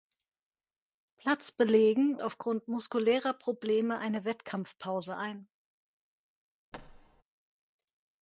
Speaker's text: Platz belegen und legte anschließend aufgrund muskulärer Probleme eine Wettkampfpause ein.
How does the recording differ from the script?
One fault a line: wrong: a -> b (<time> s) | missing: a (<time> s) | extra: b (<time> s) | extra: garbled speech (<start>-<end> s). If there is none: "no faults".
missing: und legte anschließend (2.2 s)